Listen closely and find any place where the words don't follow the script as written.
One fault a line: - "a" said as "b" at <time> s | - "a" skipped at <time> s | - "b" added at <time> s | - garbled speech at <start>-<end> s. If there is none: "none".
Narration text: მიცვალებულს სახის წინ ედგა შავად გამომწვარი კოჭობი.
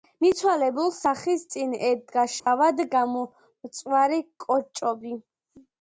none